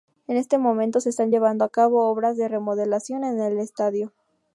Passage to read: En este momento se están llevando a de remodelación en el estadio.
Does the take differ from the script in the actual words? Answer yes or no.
yes